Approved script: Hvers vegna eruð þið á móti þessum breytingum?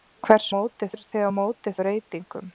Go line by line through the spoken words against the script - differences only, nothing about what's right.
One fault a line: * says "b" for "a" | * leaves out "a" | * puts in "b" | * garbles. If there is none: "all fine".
* says "móti" for "vegna"
* leaves out "þessum"